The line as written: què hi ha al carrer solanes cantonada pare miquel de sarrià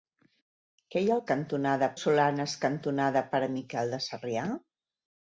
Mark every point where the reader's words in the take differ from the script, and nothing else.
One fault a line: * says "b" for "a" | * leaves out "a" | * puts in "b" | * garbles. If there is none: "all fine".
* says "cantonada" for "carrer"